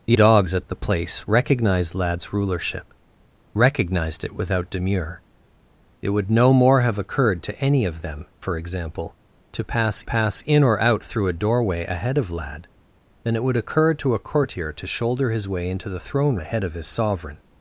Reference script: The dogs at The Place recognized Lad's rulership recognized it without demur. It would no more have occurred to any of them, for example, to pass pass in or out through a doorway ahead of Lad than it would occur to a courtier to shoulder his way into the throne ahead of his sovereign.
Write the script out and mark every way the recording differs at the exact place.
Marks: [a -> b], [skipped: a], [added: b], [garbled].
The dogs at The Place recognized Lad's rulership recognized it without demur. It would no more have occurred to any of them, for example, to pass pass in or out through a doorway ahead of Lad than it would occur to a courtier to shoulder his way into the throne ahead of his sovereign.